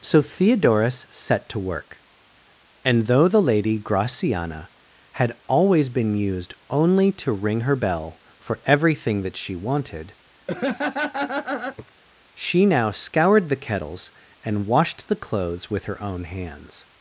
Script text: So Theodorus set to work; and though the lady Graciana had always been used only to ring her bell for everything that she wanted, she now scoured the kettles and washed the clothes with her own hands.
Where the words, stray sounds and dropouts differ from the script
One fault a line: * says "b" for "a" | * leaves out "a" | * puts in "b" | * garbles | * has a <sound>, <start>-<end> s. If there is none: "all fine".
* has a laugh, 10.5-11.9 s